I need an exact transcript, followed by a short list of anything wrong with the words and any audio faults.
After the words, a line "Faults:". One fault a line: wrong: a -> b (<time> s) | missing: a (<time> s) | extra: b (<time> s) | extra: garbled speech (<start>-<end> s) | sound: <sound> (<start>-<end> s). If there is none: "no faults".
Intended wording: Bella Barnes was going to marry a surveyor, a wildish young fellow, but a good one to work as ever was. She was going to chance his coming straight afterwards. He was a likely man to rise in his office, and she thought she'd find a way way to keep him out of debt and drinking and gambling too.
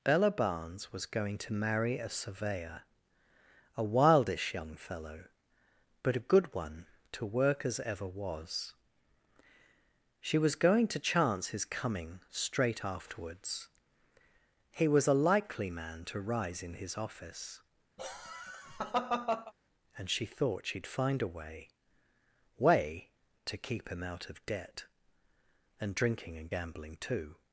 Bella Barnes was going to marry a surveyor, a wildish young fellow, but a good one to work as ever was. She was going to chance his coming straight afterwards. He was a likely man to rise in his office, and she thought she'd find a way way to keep him out of debt and drinking and gambling too.
Faults:
sound: laugh (18.0-19.5 s)